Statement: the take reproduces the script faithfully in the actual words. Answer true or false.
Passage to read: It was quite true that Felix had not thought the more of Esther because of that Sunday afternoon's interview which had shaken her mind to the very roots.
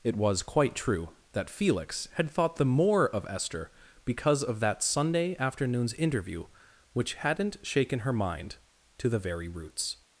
false